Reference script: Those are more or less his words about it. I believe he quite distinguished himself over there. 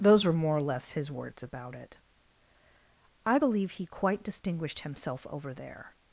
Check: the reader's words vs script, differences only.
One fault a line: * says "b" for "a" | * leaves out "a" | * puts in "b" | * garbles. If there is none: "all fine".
* says "were" for "are"